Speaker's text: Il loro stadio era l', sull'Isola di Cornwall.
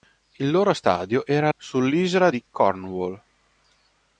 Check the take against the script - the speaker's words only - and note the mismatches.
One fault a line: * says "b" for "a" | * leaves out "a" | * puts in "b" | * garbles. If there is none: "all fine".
* leaves out "l"